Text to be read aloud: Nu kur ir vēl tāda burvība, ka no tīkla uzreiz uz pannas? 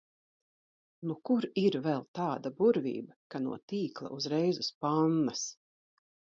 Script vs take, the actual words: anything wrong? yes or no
no